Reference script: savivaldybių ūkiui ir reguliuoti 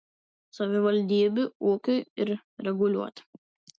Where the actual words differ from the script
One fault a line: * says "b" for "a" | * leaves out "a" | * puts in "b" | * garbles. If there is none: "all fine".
all fine